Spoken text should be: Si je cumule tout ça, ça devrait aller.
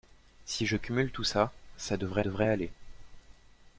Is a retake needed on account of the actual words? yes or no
yes